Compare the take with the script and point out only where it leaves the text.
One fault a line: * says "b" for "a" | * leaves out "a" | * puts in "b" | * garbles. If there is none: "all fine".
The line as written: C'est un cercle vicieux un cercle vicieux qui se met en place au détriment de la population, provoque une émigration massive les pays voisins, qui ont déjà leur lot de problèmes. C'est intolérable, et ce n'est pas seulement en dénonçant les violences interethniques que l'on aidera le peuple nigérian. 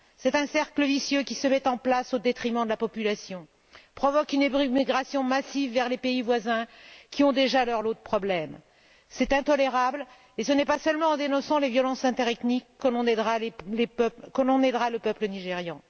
* leaves out "un cercle vicieux"
* puts in "vers"